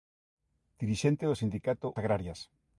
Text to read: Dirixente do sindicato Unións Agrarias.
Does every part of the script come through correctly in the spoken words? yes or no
no